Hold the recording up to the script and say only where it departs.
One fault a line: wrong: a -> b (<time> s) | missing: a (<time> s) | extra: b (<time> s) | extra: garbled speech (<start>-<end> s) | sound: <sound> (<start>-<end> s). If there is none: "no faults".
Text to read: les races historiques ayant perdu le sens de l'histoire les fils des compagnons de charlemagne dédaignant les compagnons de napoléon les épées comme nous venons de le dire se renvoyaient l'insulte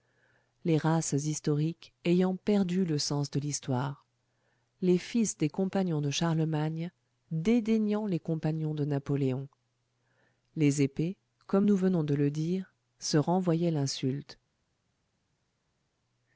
no faults